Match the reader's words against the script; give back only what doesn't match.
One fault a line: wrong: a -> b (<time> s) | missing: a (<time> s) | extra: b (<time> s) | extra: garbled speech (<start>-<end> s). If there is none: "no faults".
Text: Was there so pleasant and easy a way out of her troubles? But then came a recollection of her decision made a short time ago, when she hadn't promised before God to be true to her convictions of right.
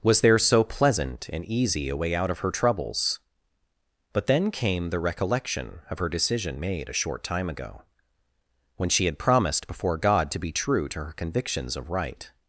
wrong: a -> the (4.9 s)
wrong: hadn't -> had (9.1 s)